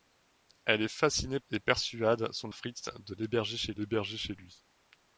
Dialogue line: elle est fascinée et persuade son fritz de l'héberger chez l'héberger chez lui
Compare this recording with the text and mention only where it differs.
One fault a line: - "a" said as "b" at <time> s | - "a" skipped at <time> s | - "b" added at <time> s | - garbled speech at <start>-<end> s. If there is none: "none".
none